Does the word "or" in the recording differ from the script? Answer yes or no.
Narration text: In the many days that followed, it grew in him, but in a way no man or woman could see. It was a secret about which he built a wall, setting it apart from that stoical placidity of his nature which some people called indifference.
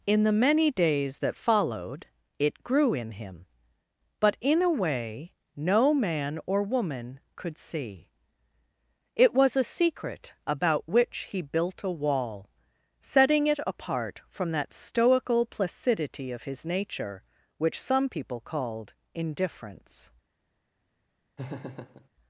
no